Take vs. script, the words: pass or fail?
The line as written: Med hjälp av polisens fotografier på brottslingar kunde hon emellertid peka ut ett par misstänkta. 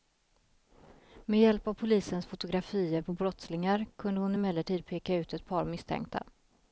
pass